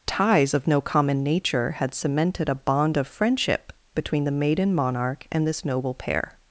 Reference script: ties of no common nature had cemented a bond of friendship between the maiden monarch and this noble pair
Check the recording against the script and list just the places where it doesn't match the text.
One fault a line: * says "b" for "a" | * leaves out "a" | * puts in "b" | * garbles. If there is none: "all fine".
all fine